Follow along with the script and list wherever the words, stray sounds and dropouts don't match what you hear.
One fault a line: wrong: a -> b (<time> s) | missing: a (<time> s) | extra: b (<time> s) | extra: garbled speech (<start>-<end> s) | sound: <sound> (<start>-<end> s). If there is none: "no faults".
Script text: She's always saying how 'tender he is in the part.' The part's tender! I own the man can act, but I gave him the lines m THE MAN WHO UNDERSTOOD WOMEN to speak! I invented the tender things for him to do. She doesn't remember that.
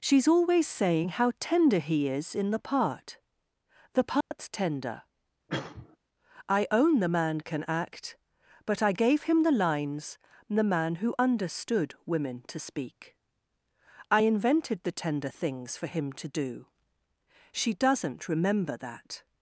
sound: dropout (4.2-4.3 s)
sound: cough (5.5-6.0 s)
missing: m (10.2 s)